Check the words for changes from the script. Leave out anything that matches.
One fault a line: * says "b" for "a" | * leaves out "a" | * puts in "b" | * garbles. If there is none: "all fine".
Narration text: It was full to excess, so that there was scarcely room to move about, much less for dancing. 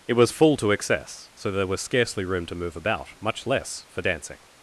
* leaves out "that"